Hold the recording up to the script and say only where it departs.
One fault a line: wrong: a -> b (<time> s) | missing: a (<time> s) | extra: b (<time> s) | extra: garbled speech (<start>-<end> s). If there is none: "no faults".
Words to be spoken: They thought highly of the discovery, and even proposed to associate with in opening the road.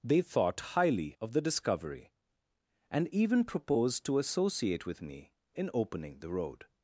extra: me (5.0 s)